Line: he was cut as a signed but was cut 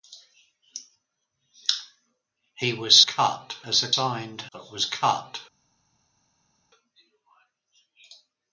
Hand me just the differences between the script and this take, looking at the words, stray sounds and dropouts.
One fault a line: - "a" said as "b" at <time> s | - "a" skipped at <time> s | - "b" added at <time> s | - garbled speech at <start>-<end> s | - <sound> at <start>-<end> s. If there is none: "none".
none